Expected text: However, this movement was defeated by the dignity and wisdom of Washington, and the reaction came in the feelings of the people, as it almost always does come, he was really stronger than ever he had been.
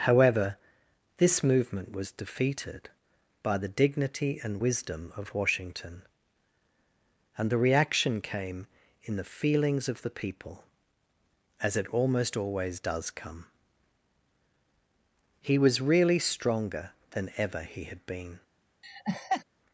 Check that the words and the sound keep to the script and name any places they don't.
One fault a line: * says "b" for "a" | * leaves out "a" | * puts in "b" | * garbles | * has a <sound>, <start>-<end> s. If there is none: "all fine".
* has a laugh, 18.8-19.4 s